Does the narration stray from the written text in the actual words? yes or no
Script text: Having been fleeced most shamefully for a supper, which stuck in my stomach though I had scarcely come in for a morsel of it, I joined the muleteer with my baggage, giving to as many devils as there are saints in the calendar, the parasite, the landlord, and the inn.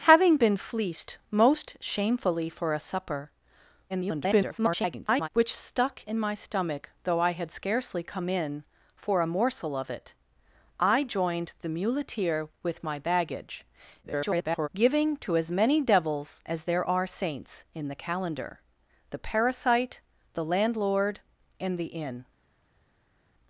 yes